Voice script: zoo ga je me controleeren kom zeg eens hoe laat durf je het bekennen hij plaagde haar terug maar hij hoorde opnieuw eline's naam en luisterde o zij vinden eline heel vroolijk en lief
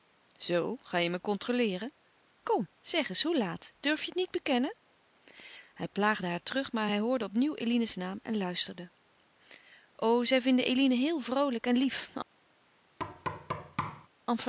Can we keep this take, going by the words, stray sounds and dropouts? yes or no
no